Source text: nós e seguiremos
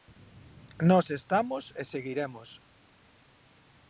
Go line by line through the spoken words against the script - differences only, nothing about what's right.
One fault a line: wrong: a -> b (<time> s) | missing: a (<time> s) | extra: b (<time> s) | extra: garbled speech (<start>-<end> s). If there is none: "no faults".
extra: estamos (1.2 s)